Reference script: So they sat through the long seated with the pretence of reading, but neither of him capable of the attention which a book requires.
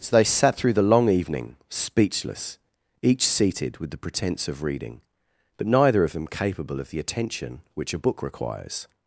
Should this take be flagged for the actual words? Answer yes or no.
yes